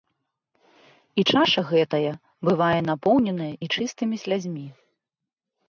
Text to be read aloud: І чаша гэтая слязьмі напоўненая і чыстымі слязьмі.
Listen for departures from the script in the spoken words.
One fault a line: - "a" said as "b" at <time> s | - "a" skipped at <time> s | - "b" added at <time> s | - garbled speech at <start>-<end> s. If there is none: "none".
- "слязьмі" said as "бывае" at 2.5 s